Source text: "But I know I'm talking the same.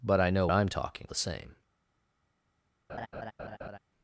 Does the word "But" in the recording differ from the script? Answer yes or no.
no